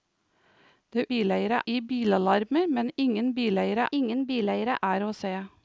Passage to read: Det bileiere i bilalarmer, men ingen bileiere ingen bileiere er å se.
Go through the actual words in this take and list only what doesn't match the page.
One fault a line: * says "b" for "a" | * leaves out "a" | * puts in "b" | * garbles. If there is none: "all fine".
all fine